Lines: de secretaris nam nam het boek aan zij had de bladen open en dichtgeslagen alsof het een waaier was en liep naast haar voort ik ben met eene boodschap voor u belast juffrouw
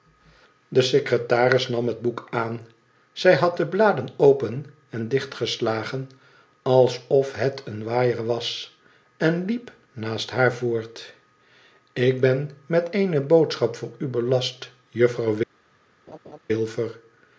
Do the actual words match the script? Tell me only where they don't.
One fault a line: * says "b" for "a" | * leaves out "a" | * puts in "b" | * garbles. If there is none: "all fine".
* leaves out "nam"